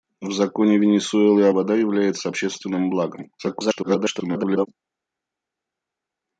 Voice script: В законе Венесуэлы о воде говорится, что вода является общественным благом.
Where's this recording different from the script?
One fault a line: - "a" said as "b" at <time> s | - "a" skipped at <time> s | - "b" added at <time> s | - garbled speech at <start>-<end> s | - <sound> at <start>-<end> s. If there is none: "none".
- "воде говорится что" skipped at 1.5 s
- garbled speech at 3.4-4.7 s